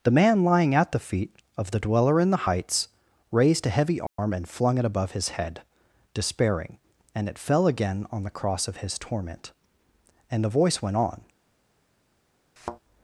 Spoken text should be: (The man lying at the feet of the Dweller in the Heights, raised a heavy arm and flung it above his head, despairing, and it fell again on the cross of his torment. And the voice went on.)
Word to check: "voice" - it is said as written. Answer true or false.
true